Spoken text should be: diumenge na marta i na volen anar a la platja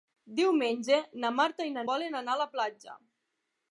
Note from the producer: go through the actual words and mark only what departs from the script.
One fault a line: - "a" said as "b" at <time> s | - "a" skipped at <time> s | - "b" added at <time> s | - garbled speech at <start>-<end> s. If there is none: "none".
none